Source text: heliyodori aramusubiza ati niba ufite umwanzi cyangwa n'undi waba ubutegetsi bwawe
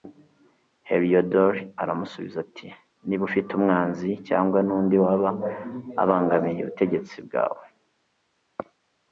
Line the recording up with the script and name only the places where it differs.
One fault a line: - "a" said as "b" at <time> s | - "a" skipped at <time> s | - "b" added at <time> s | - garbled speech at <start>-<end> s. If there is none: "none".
- "abangamiye" added at 6.0 s